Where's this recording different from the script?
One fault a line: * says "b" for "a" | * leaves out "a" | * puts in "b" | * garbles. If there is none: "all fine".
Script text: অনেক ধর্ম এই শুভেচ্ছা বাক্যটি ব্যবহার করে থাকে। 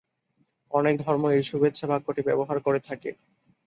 all fine